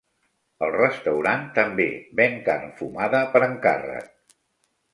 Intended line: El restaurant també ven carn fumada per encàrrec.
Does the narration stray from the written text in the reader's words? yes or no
no